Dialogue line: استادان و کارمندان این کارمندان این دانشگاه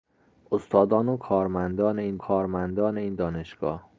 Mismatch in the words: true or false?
false